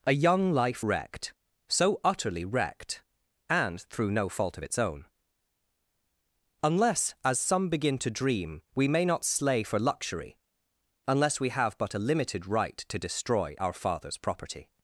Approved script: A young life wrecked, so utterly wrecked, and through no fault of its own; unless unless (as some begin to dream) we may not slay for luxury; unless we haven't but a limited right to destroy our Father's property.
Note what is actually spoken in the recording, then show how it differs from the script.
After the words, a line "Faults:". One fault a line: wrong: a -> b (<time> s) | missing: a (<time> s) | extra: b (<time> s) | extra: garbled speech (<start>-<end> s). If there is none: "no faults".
A young life wrecked, so utterly wrecked, and through no fault of its own; unless (as some begin to dream) we may not slay for luxury; unless we have but a limited right to destroy our Father's property.
Faults:
missing: unless (7.1 s)
wrong: haven't -> have (11.5 s)